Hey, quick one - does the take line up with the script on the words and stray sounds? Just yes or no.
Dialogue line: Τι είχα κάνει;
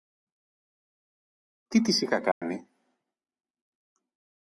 no